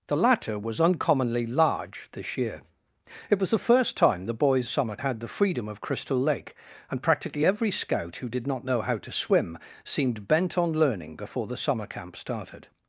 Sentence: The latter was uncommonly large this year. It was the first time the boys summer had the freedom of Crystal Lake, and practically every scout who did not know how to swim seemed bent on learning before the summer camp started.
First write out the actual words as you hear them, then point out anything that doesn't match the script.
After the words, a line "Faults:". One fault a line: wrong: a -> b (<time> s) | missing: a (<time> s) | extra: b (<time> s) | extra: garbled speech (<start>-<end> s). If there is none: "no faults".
The latter was uncommonly large this year. It was the first time the boys summer had the freedom of Crystal Lake, and practically every scout who did not know how to swim seemed bent on learning before the summer camp started.
Faults:
no faults